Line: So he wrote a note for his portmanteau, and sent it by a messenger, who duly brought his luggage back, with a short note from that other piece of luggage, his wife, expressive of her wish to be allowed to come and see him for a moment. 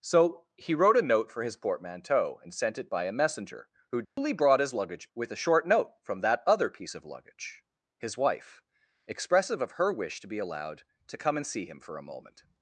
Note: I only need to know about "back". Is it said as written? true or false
false